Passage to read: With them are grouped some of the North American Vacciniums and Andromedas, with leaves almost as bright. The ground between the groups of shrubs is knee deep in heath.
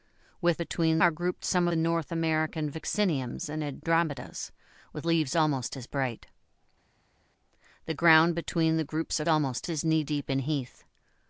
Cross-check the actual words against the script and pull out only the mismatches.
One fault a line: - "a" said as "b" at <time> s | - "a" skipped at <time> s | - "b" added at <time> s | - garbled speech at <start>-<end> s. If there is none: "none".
- "them" said as "between" at 0.6 s
- "of" skipped at 1.7 s
- "shrubs" said as "almost" at 9.3 s